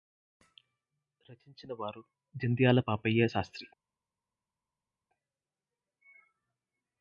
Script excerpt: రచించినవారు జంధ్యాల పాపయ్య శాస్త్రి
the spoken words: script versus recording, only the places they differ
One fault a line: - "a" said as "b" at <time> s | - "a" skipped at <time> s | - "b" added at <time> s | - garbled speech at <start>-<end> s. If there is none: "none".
none